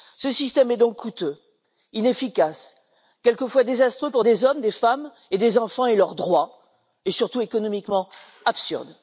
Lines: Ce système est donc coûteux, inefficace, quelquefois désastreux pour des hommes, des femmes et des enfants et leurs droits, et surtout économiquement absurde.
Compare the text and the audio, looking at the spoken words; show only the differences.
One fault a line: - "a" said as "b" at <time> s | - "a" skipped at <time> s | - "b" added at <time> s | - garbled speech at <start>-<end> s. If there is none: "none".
none